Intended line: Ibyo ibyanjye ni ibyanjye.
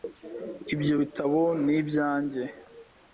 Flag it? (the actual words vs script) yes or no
yes